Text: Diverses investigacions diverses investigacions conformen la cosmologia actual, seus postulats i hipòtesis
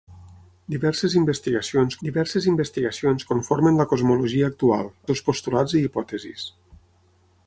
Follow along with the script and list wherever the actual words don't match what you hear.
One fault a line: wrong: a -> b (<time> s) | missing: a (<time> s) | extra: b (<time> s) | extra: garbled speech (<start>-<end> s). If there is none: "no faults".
no faults